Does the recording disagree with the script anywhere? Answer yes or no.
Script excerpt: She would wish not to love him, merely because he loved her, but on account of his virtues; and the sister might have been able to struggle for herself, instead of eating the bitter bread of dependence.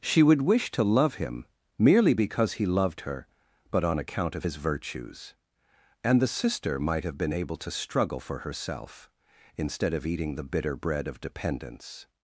yes